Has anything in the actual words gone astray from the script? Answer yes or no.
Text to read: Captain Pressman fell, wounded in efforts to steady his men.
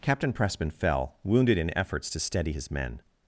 no